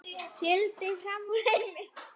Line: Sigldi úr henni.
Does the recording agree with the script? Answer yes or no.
no